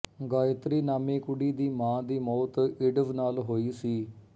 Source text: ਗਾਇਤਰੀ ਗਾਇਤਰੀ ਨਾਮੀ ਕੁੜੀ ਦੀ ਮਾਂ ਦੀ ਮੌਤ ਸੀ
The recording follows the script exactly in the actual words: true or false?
false